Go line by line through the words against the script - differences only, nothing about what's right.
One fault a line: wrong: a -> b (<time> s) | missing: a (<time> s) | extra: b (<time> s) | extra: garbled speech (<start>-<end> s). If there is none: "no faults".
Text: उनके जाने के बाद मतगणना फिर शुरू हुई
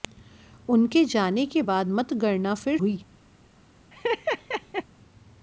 missing: शुरू (2.8 s)